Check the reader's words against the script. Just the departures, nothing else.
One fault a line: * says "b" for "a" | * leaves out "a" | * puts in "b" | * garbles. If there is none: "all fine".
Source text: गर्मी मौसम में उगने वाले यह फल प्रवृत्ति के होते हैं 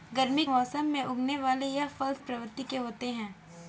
all fine